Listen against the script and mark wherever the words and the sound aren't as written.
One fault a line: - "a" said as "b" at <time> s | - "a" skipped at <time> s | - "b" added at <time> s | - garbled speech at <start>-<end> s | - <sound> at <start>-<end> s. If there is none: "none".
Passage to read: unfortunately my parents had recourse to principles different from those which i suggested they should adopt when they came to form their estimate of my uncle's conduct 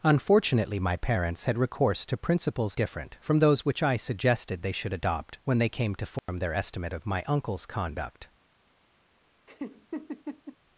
- dropout at 6.2-6.3 s
- laugh at 9.5-10.6 s